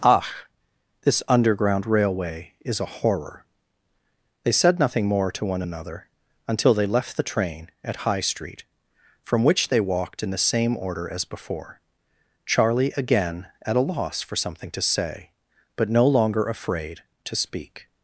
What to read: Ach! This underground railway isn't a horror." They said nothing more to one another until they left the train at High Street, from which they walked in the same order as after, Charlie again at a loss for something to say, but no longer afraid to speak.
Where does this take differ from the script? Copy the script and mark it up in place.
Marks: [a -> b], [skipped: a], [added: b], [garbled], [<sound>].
Ach! This underground railway [isn't -> is] a horror." They said nothing more to one another until they left the train at High Street, from which they walked in the same order as [after, -> before] Charlie again at a loss for something to say, but no longer afraid to speak.